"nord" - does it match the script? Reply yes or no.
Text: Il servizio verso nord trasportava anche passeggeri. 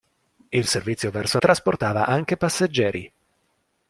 no